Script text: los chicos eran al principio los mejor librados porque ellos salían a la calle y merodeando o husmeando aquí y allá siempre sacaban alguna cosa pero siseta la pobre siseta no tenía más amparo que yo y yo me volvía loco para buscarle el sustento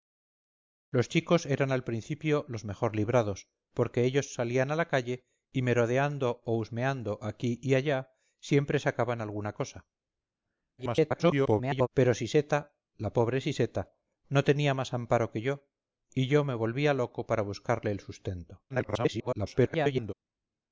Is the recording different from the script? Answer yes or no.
yes